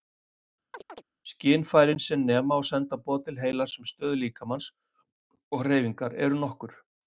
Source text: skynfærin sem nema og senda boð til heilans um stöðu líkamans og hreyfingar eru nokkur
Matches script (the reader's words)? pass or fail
pass